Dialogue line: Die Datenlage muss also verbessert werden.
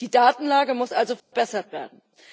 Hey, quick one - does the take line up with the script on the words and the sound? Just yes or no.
no